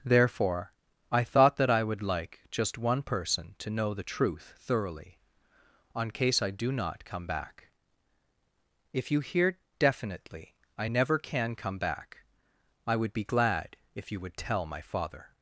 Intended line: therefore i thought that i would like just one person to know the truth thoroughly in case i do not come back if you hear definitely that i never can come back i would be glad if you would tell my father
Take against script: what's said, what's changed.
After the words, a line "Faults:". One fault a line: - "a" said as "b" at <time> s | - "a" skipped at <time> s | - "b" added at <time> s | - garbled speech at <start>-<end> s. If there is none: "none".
therefore i thought that i would like just one person to know the truth thoroughly on case i do not come back if you hear definitely i never can come back i would be glad if you would tell my father
Faults:
- "in" said as "on" at 5.9 s
- "that" skipped at 10.6 s